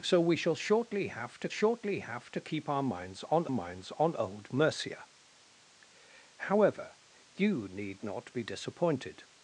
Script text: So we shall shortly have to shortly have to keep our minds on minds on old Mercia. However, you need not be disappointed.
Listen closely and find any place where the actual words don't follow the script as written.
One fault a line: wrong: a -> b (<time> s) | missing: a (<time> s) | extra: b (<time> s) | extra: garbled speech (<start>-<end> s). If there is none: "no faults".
no faults